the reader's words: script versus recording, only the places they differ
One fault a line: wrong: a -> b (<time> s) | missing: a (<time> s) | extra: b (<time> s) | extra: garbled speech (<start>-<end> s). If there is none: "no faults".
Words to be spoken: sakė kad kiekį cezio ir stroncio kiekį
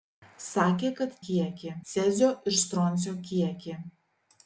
no faults